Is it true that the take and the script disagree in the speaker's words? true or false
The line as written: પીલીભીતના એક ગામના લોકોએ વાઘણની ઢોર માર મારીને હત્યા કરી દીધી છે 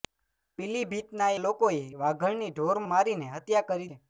true